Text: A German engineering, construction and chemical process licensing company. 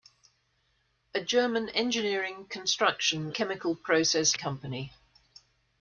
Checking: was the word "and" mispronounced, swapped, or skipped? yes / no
yes